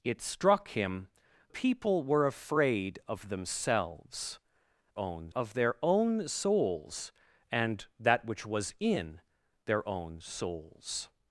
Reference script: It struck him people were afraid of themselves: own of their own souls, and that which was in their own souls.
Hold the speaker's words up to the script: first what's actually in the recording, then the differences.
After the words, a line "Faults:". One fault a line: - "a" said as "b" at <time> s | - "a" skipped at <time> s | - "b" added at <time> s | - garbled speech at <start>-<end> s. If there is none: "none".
It struck him people were afraid of themselves: own of their own souls, and that which was in their own souls.
Faults:
none